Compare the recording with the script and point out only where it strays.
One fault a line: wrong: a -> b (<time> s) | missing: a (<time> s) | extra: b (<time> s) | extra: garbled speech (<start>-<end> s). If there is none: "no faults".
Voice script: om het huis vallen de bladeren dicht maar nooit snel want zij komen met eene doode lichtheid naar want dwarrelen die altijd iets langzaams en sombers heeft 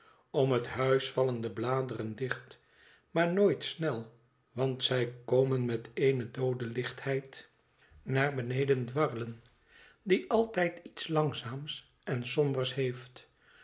wrong: want -> beneden (8.3 s)